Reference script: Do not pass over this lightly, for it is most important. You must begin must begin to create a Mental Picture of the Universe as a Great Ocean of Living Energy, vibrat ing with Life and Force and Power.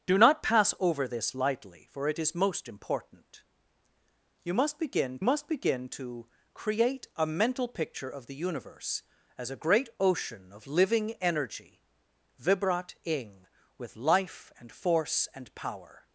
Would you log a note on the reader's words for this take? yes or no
no